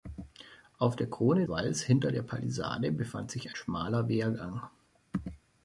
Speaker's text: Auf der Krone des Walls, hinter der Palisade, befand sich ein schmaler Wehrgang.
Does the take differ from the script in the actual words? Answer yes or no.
yes